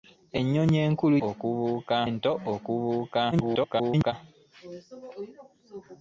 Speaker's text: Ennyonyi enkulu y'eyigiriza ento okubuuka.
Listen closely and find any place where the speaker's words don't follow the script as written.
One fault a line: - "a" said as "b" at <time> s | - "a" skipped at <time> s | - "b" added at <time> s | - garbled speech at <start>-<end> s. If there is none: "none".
- "y'eyigiriza" said as "okubuuka" at 1.3 s
- garbled speech at 3.3-4.1 s